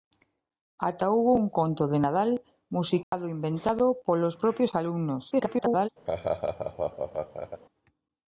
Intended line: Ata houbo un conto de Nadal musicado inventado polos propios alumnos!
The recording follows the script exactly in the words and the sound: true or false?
false